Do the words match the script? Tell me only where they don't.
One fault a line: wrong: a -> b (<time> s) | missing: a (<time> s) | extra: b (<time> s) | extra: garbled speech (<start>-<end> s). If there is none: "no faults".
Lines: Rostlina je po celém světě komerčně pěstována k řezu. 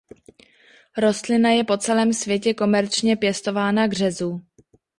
no faults